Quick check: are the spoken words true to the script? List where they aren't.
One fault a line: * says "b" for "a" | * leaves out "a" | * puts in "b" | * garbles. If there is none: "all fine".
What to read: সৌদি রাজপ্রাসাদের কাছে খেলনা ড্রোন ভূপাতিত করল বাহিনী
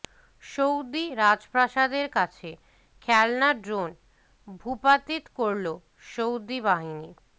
* puts in "সৌদি"